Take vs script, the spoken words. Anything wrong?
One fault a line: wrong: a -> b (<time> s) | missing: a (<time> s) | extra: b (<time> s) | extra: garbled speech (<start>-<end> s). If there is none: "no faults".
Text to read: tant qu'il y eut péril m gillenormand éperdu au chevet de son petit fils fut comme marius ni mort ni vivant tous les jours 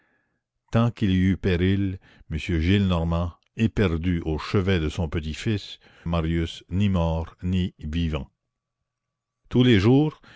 missing: fut comme (5.8 s)